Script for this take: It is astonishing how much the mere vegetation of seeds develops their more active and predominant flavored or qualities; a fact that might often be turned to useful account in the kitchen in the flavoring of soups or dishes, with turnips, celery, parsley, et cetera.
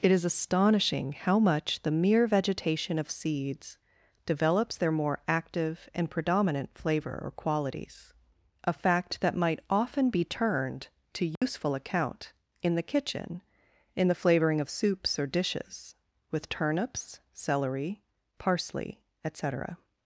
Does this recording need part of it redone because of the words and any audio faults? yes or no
yes